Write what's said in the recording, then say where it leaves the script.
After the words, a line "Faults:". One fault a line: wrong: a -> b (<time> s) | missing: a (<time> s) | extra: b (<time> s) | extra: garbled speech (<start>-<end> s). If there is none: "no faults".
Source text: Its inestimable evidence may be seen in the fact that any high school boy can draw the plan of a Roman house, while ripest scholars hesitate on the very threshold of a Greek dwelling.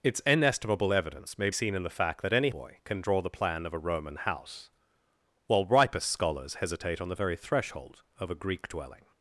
Its inestimable evidence may seen in the fact that any boy can draw the plan of a Roman house, while ripest scholars hesitate on the very threshold of a Greek dwelling.
Faults:
missing: be (1.5 s)
missing: high school (2.5 s)